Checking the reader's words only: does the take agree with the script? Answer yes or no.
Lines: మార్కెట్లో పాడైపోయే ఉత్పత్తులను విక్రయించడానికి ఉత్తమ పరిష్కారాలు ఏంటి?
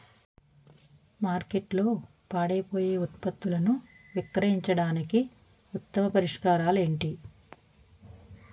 yes